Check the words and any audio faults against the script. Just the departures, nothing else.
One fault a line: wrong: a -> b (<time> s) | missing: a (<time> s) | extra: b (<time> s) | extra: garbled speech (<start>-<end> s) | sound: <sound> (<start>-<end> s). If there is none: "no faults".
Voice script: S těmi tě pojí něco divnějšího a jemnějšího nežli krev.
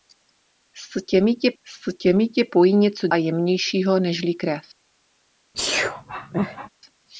extra: s těmi tě (1.6 s)
missing: divnějšího (3.1 s)
sound: sneeze (5.5-6.7 s)